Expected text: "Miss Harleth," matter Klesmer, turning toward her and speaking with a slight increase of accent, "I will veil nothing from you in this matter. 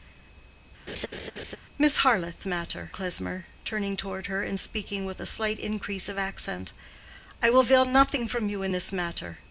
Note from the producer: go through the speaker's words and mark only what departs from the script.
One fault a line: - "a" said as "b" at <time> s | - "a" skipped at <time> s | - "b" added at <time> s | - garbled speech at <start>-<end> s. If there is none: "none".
none